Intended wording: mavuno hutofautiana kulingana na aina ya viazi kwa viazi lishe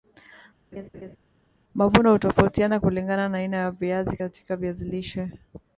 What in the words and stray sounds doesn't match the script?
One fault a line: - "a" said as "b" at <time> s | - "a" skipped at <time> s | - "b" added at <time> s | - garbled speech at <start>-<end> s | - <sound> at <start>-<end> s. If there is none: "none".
- laugh at 0.7-1.2 s
- "kwa" said as "katika" at 4.1 s